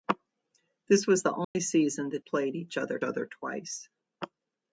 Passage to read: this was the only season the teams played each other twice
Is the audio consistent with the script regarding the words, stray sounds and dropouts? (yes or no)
no